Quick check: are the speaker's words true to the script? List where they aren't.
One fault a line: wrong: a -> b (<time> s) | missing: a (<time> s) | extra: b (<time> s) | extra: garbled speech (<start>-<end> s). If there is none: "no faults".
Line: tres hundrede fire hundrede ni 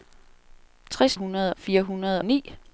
no faults